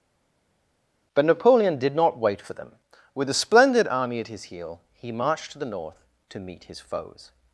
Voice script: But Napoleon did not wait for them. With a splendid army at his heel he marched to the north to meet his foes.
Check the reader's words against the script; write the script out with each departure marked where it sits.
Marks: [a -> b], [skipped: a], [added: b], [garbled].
But Napoleon did not wait for them. With a splendid army at his heel he marched to the north to meet his foes.